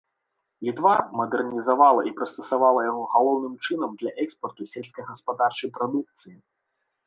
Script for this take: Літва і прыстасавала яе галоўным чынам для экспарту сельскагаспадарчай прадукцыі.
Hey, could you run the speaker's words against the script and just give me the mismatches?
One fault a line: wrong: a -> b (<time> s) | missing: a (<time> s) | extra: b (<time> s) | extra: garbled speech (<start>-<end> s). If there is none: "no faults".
extra: мадэрнізавала (1.2 s)
wrong: яе -> яго (2.9 s)